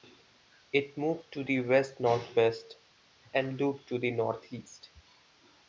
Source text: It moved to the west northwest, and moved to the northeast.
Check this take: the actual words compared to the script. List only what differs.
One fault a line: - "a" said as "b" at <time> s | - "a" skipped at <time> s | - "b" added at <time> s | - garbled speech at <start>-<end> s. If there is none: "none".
- "moved" said as "looped" at 3.6 s